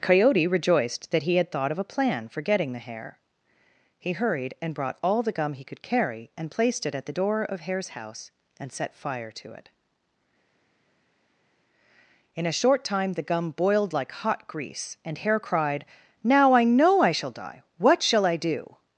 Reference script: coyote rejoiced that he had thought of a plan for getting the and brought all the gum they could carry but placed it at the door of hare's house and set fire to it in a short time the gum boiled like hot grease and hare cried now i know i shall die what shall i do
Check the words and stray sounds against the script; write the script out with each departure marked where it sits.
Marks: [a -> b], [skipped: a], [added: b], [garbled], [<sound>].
coyote rejoiced that he had thought of a plan for getting the [added: hare he hurried] and brought all the gum [they -> he] could carry [but -> and] placed it at the door of hare's house and set fire to it in a short time the gum boiled like hot grease and hare cried now i know i shall die what shall i do